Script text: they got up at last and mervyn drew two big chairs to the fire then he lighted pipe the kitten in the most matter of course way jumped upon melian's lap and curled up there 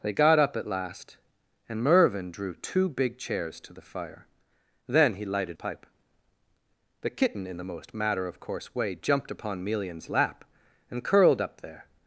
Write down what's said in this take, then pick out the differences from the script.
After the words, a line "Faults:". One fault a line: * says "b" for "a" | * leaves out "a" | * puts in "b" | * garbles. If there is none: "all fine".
they got up at last and mervyn drew two big chairs to the fire then he lighted pipe the kitten in the most matter of course way jumped upon melian's lap and curled up there
Faults:
all fine